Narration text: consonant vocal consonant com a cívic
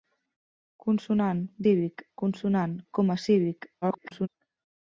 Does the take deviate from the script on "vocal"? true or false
true